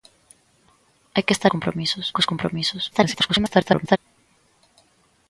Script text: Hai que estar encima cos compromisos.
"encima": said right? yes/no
no